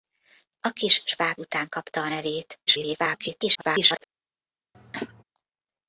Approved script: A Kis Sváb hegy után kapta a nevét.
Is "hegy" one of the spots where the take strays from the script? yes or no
yes